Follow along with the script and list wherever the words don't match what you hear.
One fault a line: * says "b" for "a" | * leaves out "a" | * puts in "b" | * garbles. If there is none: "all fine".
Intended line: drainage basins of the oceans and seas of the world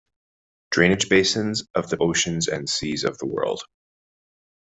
all fine